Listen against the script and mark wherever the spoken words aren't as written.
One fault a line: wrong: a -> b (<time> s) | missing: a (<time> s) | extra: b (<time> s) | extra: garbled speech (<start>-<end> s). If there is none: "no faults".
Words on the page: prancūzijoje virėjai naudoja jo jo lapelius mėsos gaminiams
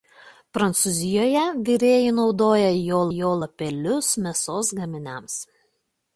no faults